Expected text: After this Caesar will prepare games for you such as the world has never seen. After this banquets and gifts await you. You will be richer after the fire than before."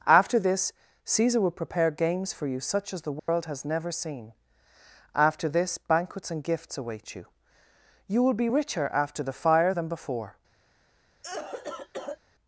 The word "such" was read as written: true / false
true